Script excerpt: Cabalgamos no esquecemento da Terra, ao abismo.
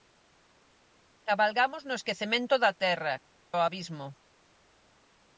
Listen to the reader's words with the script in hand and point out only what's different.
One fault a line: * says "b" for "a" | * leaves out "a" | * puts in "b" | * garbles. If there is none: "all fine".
all fine